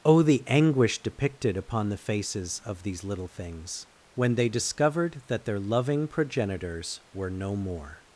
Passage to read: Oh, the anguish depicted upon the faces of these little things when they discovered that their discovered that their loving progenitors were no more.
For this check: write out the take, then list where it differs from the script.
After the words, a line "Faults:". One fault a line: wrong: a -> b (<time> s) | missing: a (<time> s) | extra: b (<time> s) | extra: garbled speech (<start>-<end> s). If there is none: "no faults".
Oh, the anguish depicted upon the faces of these little things when they discovered that their loving progenitors were no more.
Faults:
missing: discovered that their (5.6 s)